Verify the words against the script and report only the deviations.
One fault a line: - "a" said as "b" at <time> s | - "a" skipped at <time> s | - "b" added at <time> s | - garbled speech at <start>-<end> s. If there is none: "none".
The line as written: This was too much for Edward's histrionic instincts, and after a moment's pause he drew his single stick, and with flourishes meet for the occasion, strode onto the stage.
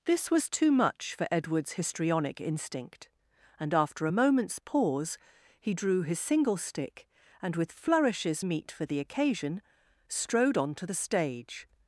- "instincts" said as "instinct" at 2.4 s